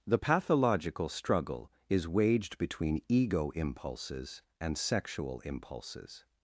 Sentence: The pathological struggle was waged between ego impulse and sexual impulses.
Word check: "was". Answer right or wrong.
wrong